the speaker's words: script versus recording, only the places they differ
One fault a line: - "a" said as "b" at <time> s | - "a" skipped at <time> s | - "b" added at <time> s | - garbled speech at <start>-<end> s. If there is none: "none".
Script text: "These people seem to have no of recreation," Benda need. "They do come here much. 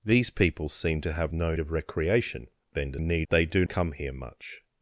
none